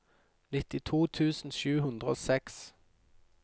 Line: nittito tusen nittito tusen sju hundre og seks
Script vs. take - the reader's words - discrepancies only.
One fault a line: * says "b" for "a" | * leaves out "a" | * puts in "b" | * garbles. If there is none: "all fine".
* leaves out "nittito tusen"